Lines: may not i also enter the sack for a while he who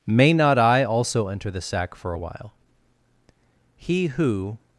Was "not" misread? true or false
false